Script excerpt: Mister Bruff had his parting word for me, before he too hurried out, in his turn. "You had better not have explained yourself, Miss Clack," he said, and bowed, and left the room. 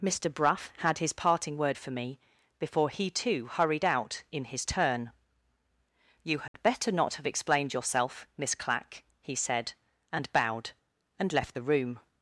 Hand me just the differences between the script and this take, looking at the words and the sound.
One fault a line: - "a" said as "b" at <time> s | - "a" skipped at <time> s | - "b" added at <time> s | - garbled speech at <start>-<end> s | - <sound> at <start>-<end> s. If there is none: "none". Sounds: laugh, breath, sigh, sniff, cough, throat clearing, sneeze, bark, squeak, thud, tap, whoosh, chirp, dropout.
- dropout at 6.5-6.5 s